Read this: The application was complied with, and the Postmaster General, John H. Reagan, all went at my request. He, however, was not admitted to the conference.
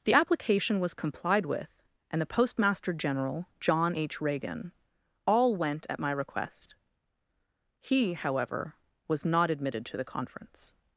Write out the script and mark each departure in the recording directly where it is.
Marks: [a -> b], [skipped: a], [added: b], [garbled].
The application was complied with, and the Postmaster General, John H. Reagan, all went at my request. He, however, was not admitted to the conference.